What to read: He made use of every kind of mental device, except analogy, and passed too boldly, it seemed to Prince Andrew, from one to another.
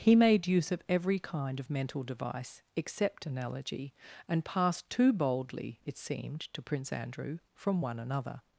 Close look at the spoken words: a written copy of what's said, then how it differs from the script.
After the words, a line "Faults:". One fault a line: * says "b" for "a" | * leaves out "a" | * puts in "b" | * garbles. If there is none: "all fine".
He made use of every kind of mental device, except analogy, and passed too boldly, it seemed to Prince Andrew, from one another.
Faults:
* leaves out "to"